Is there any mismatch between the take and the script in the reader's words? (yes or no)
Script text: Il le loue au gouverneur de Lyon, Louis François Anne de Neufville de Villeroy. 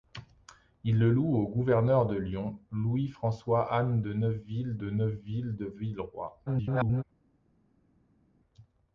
yes